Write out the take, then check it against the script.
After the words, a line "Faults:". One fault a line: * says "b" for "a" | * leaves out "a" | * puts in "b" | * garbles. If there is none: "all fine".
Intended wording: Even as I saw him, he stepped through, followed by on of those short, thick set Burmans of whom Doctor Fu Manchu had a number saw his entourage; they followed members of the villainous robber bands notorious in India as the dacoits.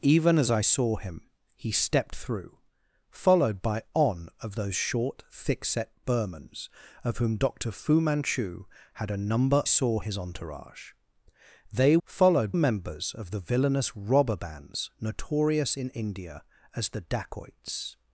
Even as I saw him, he stepped through, followed by on of those short, thick set Burmans of whom Doctor Fu Manchu had a number saw his entourage; they followed members of the villainous robber bands notorious in India as the dacoits.
Faults:
all fine